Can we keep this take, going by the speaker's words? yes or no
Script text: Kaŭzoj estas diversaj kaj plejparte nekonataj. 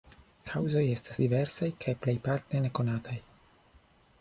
yes